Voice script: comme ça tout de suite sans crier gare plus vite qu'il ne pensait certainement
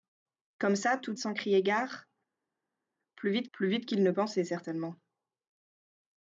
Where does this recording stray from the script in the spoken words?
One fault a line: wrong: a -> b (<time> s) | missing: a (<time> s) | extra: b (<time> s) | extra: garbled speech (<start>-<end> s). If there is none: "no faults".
missing: suite (1.2 s)
extra: plus vite (3.5 s)